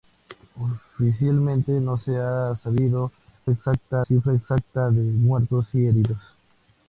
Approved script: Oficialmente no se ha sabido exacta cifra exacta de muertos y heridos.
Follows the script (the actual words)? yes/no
yes